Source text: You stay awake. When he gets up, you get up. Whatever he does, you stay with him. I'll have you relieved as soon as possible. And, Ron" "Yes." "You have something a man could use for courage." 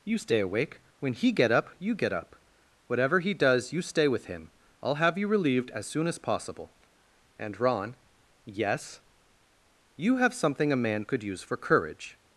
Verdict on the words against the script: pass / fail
fail